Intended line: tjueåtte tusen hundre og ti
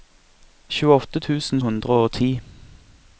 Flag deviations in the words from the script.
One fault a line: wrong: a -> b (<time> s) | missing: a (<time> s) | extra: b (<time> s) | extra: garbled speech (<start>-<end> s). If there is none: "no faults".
no faults